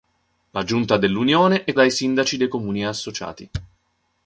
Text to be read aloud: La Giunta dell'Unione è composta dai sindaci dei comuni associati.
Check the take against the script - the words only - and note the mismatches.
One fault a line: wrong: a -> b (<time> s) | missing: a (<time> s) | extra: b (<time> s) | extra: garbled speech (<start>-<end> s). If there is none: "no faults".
missing: composta (1.7 s)